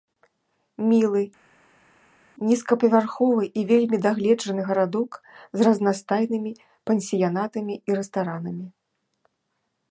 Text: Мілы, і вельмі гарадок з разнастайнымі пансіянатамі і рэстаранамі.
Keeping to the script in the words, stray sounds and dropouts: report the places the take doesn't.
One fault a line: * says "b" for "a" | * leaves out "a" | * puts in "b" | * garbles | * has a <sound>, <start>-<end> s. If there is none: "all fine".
* puts in "нізкапавярховы"
* puts in "дагледжаны"